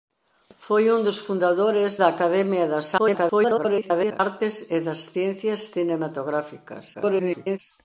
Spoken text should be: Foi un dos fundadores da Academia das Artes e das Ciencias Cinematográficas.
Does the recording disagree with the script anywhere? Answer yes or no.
yes